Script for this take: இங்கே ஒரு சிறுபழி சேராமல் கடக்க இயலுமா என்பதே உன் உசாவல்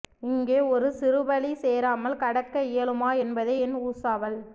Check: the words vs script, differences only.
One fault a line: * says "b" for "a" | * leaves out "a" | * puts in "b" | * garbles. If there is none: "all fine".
* says "என்" for "உன்"